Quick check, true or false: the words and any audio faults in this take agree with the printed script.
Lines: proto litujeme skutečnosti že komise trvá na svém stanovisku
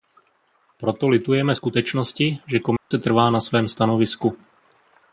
false